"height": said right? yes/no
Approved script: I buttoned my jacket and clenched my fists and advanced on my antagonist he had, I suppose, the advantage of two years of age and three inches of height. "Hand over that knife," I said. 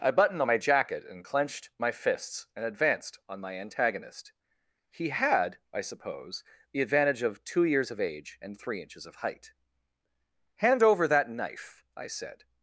yes